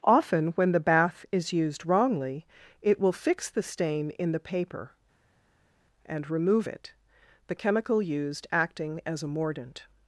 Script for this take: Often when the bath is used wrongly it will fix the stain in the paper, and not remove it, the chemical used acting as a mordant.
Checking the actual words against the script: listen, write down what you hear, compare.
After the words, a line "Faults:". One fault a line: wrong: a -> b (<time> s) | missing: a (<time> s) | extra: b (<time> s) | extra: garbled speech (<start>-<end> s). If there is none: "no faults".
Often when the bath is used wrongly it will fix the stain in the paper, and remove it, the chemical used acting as a mordant.
Faults:
missing: not (6.3 s)